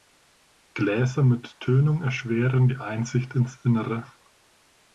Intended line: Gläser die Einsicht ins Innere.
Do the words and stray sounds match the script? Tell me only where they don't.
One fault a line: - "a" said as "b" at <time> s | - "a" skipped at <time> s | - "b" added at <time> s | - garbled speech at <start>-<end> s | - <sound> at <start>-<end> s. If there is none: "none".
- "mit Tönung erschweren" added at 1.2 s